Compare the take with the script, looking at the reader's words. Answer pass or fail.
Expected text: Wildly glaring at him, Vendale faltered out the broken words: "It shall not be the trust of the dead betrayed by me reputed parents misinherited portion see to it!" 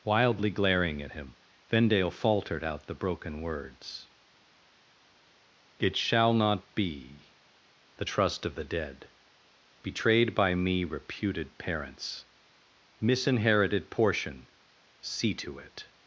pass